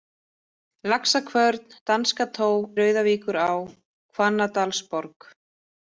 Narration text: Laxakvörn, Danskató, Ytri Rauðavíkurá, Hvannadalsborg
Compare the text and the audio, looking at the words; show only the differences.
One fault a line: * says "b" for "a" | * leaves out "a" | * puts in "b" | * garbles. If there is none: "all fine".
* leaves out "Ytri"